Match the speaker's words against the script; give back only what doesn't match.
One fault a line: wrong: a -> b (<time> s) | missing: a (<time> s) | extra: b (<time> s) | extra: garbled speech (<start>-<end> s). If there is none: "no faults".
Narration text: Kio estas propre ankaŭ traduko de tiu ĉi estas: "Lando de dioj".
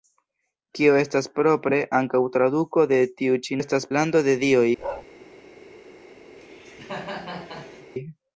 no faults